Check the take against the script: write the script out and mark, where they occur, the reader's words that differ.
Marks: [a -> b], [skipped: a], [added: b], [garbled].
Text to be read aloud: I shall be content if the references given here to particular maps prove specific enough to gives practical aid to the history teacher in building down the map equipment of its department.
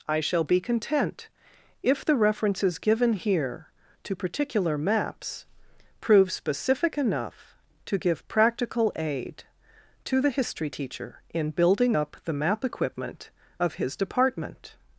I shall be content if the references given here to particular maps prove specific enough to [gives -> give] practical aid to the history teacher in building [down -> up] the map equipment of [its -> his] department.